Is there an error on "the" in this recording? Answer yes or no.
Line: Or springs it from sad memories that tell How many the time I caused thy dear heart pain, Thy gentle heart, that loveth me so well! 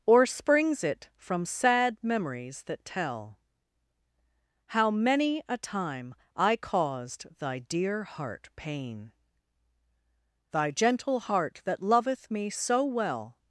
yes